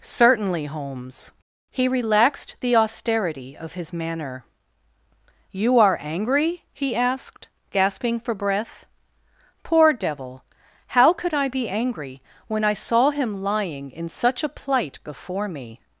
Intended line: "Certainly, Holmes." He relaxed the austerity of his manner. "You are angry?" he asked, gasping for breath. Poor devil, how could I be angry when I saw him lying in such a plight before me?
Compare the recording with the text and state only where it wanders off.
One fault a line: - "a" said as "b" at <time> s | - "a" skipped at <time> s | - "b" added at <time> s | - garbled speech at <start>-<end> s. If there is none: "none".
none